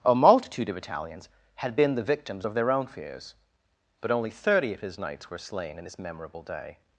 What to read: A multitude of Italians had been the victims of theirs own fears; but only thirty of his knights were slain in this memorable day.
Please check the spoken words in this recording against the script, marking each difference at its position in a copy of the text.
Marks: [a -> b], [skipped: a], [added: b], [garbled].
A multitude of Italians had been the victims of [theirs -> their] own fears; but only thirty of his knights were slain in this memorable day.